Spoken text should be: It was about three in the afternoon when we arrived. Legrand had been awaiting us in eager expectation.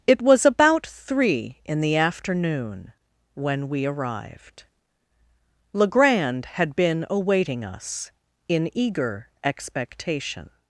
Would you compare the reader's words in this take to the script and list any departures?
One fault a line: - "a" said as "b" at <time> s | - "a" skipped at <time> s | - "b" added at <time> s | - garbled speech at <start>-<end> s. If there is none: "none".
none